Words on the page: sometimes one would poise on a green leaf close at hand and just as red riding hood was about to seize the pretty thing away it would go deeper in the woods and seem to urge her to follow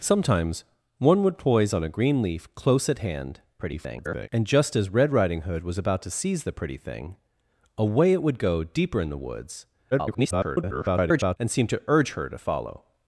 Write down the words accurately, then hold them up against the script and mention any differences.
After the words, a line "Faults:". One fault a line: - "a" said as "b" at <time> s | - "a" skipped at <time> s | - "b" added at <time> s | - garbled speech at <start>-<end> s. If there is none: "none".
sometimes one would poise on a green leaf close at hand [garbled] and just as red riding hood was about to seize the pretty thing away it would go deeper in the woods [garbled] and seem to urge her to follow
Faults:
- garbled speech at 3.6-4.3 s
- garbled speech at 9.9-11.4 s